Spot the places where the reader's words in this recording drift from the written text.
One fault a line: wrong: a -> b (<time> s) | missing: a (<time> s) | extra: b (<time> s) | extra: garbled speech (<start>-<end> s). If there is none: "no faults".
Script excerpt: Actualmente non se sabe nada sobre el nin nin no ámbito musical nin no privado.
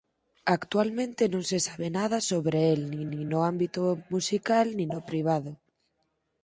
no faults